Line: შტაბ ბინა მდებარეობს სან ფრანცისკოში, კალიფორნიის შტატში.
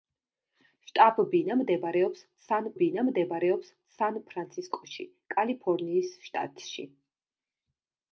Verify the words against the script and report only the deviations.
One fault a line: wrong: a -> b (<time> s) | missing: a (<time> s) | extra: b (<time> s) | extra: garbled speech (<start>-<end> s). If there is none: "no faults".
extra: ბინა მდებარეობს სან (2.8 s)